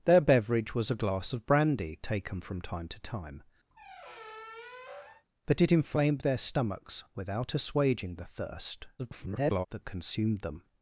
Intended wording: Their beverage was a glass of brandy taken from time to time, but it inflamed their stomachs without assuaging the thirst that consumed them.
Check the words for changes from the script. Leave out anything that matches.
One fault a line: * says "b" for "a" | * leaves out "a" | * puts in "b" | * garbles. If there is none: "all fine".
* garbles